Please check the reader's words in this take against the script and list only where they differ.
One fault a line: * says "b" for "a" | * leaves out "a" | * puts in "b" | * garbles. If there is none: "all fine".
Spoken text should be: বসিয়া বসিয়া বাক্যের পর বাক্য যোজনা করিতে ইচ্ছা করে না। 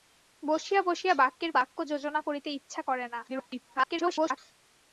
* leaves out "পর"
* garbles